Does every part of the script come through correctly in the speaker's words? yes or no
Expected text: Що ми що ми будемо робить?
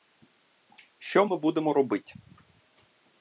no